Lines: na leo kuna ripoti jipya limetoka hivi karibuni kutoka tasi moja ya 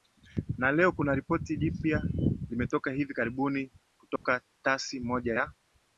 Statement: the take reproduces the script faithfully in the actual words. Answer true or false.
true